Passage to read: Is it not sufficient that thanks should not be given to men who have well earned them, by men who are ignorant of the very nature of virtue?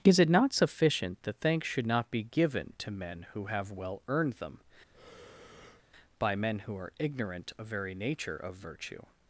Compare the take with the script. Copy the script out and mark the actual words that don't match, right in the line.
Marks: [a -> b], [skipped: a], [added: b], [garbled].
Is it not sufficient that thanks should not be given to men who have well earned them, by men who are ignorant of [skipped: the] very nature of virtue?